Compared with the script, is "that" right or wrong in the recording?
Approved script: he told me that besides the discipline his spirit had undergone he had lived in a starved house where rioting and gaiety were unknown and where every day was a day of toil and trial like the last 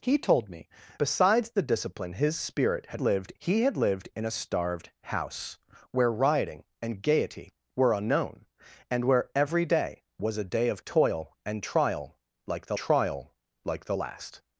wrong